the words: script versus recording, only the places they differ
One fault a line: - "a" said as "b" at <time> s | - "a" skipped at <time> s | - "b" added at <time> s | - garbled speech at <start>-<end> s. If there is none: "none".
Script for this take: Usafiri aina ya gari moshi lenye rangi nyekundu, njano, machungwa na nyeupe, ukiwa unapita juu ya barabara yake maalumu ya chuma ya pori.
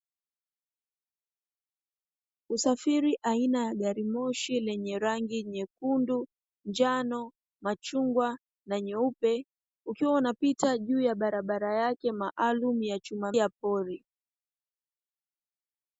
none